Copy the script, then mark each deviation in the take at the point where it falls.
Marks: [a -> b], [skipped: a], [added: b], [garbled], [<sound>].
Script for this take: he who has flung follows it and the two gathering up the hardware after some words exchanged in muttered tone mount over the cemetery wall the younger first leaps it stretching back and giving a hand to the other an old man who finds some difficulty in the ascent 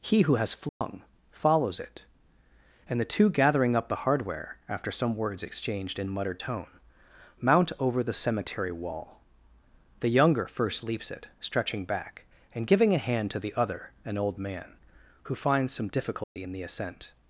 he who has flung [dropout] follows it and the two gathering up the hardware after some words exchanged in muttered tone mount over the cemetery wall the younger first leaps it stretching back and giving a hand to the other an old man who finds some difficulty [dropout] in the ascent